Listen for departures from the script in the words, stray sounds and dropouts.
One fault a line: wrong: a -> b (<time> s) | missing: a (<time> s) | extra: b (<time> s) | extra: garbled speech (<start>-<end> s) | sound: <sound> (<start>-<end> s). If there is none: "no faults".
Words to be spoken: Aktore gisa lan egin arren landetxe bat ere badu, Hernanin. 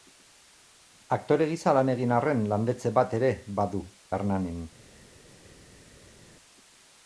no faults